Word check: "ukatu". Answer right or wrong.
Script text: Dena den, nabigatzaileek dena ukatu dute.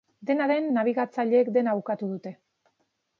right